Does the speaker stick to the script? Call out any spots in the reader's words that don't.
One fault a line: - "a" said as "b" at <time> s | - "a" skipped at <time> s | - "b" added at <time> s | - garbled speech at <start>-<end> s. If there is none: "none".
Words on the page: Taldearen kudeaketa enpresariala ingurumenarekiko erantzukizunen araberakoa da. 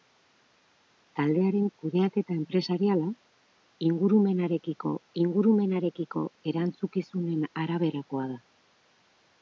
- "ingurumenarekiko" added at 5.2 s